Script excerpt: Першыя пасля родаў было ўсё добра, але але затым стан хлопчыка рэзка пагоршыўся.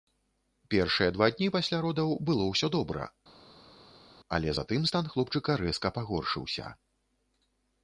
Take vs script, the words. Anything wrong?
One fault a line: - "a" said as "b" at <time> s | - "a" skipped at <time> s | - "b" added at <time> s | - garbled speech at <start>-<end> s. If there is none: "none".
- "два дні" added at 1.2 s
- "але" skipped at 4.5 s